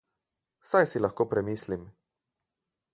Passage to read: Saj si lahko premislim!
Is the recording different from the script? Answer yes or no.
no